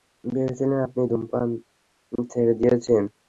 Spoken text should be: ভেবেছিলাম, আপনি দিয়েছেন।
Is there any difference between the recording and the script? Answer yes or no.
yes